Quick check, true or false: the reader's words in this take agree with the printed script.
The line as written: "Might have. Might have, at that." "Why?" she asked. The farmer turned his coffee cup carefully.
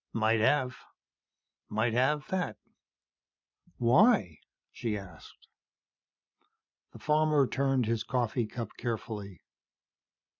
false